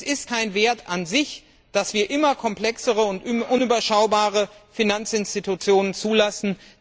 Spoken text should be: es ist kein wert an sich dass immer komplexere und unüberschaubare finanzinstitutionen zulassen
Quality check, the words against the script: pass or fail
fail